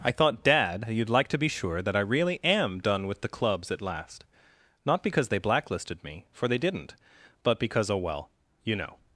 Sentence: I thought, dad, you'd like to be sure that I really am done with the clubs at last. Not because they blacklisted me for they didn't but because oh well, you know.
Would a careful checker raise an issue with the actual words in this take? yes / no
no